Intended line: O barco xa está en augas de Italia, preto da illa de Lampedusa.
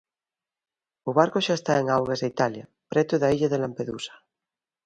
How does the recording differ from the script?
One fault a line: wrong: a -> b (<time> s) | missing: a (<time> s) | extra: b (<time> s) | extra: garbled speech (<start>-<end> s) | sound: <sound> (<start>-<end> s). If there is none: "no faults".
no faults